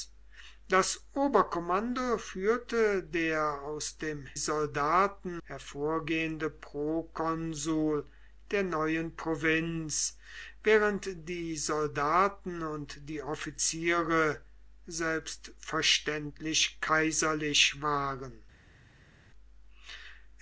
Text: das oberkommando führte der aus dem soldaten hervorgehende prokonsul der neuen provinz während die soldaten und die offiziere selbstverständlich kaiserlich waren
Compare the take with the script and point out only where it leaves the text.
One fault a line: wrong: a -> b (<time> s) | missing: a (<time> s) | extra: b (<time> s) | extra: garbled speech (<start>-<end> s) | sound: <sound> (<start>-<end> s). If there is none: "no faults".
no faults